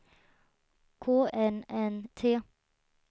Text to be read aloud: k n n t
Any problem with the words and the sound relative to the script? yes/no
no